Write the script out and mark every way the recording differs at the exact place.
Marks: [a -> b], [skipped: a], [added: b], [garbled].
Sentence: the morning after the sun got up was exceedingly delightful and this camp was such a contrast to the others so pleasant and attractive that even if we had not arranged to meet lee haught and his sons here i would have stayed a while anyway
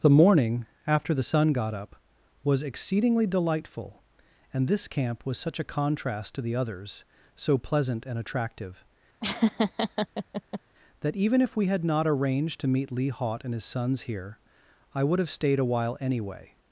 the morning after the sun got up was exceedingly delightful and this camp was such a contrast to the others so pleasant and attractive that even if we had not arranged to meet lee haught and his sons here i would have stayed a while anyway